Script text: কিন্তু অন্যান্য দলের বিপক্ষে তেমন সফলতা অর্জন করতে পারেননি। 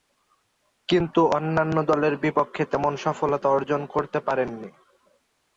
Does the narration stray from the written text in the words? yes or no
no